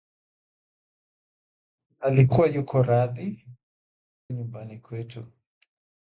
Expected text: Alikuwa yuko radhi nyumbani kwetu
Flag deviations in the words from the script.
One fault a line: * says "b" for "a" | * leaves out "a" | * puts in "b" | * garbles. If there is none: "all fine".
all fine